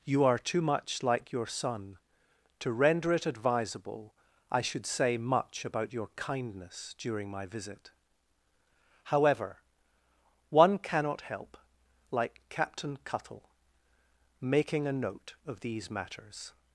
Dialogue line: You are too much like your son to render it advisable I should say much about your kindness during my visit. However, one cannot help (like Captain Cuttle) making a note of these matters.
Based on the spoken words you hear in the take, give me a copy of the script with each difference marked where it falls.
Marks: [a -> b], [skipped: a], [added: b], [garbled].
You are too much like your son to render it advisable I should say much about your kindness during my visit. However, one cannot help (like Captain Cuttle) making a note of these matters.